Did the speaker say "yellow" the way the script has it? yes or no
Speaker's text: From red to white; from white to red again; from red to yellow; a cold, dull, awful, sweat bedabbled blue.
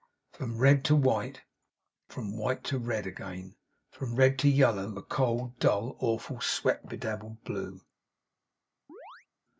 yes